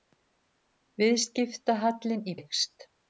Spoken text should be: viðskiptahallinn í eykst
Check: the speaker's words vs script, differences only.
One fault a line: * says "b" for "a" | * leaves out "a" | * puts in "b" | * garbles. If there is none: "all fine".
all fine